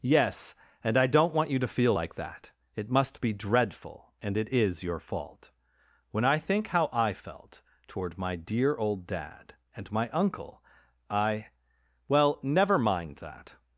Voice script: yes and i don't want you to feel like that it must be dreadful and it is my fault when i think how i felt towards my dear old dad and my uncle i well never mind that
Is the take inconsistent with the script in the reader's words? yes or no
yes